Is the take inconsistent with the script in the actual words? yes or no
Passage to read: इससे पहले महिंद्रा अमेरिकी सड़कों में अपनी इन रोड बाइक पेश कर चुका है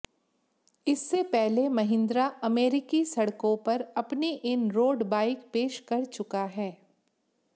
yes